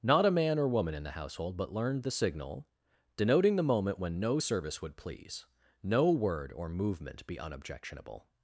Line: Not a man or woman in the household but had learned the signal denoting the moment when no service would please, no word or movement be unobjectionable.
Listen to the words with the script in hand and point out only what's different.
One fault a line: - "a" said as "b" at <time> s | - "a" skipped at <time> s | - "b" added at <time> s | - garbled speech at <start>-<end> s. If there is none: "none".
- "had" skipped at 1.7 s